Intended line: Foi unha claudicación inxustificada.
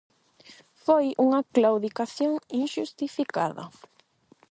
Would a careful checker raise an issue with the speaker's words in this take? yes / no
no